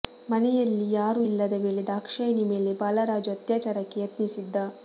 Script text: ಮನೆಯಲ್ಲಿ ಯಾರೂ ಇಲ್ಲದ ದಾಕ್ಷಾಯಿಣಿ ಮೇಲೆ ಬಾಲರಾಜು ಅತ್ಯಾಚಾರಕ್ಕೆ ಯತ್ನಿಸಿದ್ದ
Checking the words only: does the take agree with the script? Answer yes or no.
no